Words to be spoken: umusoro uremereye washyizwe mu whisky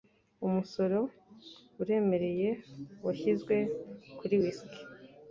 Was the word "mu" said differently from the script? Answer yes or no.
yes